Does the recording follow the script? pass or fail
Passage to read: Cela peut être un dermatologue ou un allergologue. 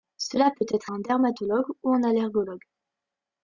pass